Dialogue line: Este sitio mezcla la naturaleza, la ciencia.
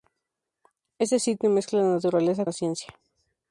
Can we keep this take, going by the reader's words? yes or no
yes